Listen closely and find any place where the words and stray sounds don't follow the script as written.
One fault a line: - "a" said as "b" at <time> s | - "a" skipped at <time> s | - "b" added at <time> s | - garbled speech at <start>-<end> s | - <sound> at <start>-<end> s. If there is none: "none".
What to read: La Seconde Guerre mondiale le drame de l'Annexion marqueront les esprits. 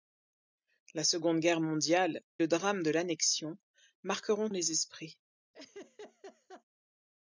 - laugh at 5.5-6.6 s